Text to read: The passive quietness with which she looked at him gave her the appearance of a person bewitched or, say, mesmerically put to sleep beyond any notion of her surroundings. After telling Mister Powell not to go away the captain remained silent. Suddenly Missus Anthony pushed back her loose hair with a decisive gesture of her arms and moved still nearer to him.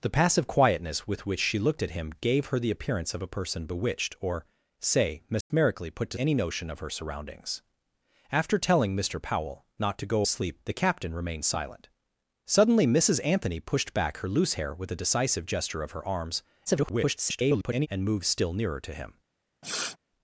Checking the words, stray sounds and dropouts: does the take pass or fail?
fail